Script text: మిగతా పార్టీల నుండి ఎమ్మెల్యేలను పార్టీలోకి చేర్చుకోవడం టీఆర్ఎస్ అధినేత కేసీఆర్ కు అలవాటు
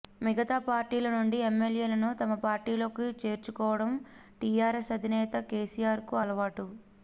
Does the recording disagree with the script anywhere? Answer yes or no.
yes